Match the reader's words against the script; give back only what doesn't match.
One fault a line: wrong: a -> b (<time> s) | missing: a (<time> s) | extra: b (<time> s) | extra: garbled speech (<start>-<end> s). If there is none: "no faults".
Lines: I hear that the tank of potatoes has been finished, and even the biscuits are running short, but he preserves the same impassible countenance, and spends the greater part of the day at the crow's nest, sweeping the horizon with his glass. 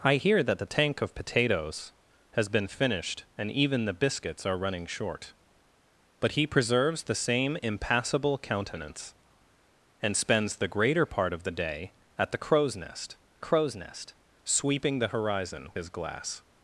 extra: crow's nest (13.4 s)
missing: with (15.7 s)